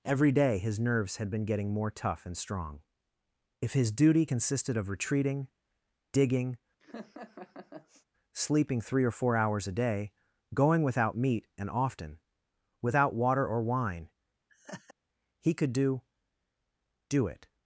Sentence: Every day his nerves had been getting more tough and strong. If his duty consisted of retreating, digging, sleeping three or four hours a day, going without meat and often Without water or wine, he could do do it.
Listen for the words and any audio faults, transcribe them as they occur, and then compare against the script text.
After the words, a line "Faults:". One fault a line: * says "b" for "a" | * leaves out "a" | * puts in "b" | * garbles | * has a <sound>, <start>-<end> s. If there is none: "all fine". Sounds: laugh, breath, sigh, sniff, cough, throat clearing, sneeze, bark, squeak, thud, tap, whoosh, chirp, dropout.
Every day his nerves had been getting more tough and strong. If his duty consisted of retreating, digging, sleeping three or four hours a day, going without meat and often Without water or wine, he could do do it.
Faults:
* has a laugh, 6.8-8.1 s
* has a laugh, 14.5-14.9 s